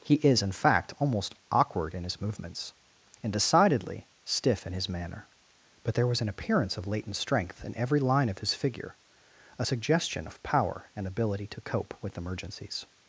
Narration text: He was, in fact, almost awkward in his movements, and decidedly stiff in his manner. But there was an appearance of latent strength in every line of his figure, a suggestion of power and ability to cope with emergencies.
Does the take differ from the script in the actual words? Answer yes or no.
yes